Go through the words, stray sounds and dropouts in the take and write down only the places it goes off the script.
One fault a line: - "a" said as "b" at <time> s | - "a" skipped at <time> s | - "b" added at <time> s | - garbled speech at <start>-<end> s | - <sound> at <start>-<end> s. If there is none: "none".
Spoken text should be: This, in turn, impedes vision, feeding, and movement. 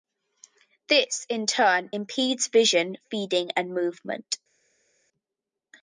none